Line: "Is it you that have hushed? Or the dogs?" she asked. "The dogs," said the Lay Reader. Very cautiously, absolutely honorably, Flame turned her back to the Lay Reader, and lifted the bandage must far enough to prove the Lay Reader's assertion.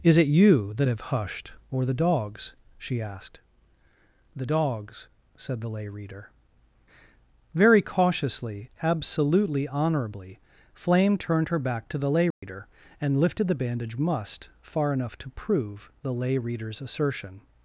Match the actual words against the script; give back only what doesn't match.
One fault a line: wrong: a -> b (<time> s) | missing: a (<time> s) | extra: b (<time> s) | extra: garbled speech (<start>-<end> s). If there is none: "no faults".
no faults